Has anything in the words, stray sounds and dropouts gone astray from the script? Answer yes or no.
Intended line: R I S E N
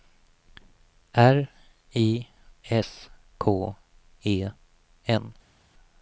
yes